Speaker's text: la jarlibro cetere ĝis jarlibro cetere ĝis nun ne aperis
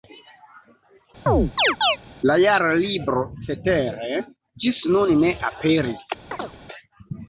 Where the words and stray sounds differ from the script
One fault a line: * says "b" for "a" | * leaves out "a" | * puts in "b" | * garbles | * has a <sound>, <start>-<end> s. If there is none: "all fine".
* has a chirp, 1.3-2.0 s
* leaves out "jarlibro cetere ĝis"
* has a chirp, 6.3-6.6 s